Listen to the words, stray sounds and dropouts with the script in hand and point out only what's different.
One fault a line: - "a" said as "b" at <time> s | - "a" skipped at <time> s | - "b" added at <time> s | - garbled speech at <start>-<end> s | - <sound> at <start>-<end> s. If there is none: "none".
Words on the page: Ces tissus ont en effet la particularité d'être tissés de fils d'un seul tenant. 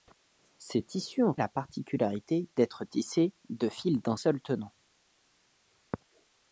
- "en effet" skipped at 1.4 s